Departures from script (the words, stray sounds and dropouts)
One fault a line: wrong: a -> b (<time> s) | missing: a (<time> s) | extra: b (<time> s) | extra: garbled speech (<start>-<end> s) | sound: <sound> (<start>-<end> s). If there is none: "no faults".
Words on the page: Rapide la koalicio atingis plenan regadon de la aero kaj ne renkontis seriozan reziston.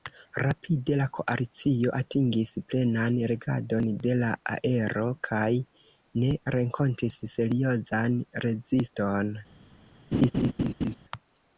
sound: laugh (10.1-11.0 s)